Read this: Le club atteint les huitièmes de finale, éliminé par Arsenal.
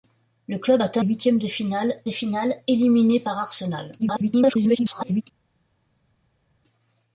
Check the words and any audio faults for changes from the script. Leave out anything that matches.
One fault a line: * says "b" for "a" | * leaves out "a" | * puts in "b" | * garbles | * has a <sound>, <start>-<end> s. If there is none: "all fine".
* leaves out "les"
* puts in "finale"
* garbles